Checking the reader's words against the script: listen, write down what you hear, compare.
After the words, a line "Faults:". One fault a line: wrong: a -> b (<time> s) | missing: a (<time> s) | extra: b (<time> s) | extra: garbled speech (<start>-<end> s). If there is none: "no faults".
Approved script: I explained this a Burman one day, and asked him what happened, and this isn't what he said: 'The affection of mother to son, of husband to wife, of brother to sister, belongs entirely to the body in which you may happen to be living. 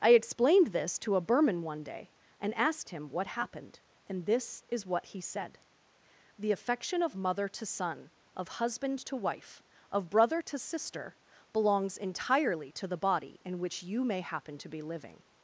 I explained this to a Burman one day, and asked him what happened, and this is what he said: 'The affection of mother to son, of husband to wife, of brother to sister, belongs entirely to the body in which you may happen to be living.
Faults:
extra: to (1.0 s)
wrong: isn't -> is (4.7 s)